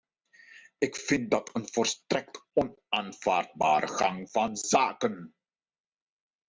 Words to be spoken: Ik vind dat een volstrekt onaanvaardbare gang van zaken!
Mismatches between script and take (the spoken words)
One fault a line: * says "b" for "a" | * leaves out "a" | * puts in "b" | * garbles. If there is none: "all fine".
all fine